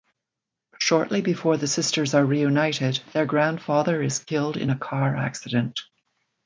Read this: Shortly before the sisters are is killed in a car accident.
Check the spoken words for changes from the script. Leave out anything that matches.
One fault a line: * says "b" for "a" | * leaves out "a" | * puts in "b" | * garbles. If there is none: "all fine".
* puts in "reunited their grandfather"